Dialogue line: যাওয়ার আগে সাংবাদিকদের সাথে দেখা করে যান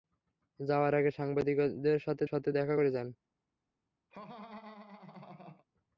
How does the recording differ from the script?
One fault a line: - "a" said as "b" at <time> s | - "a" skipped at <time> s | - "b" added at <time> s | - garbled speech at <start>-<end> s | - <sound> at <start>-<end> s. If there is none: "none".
- "সাথে" added at 2.2 s
- laugh at 4.1-5.6 s